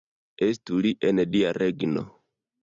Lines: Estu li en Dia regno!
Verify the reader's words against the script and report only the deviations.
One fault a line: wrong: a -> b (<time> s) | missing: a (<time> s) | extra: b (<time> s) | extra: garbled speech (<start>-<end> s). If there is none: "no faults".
no faults